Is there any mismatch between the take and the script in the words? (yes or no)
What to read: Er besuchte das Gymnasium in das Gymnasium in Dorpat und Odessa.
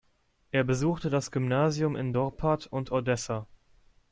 yes